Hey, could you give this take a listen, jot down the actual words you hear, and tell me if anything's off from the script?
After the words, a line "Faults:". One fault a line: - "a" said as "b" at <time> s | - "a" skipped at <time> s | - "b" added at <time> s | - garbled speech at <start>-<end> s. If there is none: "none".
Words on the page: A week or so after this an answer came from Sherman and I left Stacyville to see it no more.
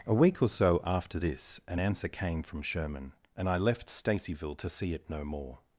A week or so after this an answer came from Sherman and I left Stacyville to see it no more.
Faults:
none